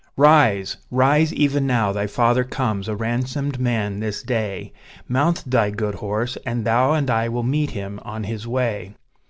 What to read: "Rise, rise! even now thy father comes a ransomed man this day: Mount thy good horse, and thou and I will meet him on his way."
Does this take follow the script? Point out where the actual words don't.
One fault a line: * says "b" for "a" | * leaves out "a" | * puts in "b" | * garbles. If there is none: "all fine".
all fine